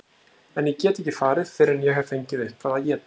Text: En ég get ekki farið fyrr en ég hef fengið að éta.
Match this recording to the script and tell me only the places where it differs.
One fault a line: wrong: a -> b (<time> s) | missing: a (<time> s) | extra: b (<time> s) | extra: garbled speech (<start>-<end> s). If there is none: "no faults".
extra: eitthvað (2.4 s)